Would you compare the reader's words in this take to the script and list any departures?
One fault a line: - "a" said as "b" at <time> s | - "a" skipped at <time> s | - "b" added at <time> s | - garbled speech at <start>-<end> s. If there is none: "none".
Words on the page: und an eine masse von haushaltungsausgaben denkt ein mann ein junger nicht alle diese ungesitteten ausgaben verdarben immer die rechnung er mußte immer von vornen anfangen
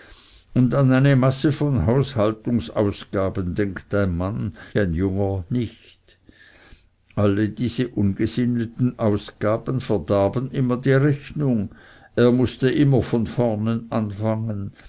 none